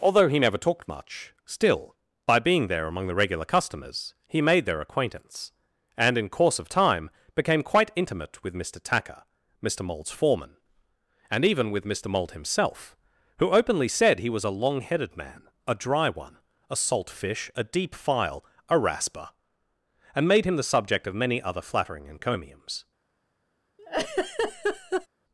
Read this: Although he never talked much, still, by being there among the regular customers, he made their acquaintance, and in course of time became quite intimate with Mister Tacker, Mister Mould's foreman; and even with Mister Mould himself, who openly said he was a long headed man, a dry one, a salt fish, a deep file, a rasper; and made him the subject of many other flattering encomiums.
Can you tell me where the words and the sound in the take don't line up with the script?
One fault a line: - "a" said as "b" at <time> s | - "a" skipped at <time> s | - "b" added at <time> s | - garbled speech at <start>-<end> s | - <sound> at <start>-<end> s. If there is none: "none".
- laugh at 23.8-25.1 s